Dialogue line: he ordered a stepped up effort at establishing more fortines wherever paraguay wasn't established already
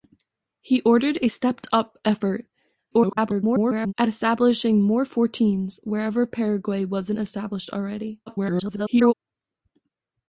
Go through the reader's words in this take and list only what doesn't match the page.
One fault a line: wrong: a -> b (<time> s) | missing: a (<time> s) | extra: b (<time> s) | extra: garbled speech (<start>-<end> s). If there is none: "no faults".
extra: garbled speech (2.9-3.9 s)
extra: garbled speech (8.3-9.1 s)